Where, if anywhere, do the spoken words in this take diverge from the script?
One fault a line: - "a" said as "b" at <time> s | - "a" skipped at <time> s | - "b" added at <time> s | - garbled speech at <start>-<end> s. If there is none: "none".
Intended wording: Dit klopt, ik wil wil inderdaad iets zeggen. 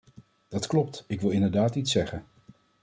- "Dit" said as "Dat" at 0.5 s
- "wil" skipped at 1.3 s